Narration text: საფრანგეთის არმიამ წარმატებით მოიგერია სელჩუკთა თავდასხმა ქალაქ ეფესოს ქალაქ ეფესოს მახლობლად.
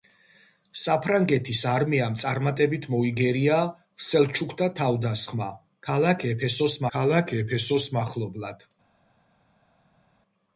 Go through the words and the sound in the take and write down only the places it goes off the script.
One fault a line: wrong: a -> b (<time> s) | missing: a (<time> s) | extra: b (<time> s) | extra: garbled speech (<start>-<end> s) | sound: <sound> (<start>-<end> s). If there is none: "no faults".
no faults